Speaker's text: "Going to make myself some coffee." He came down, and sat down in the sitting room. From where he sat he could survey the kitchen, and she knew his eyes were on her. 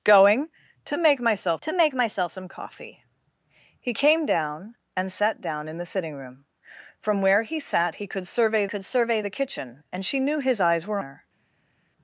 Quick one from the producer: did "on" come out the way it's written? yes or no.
no